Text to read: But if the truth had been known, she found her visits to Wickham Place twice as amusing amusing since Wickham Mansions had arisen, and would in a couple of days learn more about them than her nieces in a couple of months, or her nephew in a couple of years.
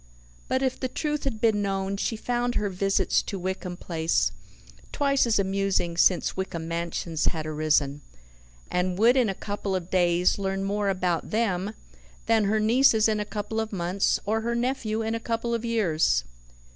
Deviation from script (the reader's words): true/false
true